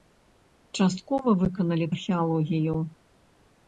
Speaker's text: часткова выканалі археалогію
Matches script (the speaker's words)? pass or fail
pass